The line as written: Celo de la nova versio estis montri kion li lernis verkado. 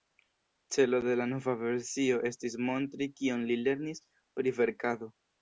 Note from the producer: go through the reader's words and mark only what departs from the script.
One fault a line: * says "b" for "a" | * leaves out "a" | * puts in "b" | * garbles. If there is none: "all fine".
* puts in "pri"